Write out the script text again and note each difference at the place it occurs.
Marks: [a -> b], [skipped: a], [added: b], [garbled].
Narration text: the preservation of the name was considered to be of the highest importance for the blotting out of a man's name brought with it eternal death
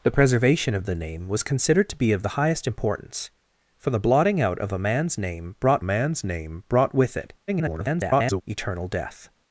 the preservation of the name was considered to be of the highest importance for the blotting out of a man's name brought [added: man's name brought] with it [garbled] eternal death